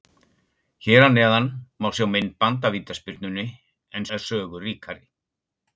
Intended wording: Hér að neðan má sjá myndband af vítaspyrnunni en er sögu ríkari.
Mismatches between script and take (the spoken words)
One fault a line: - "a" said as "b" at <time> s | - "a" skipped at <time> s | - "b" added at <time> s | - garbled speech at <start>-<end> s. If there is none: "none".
none